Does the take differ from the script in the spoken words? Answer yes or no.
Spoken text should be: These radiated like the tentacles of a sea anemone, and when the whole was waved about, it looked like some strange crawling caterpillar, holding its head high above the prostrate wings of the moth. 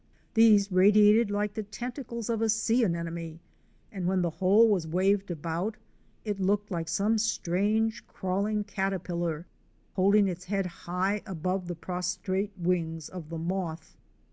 no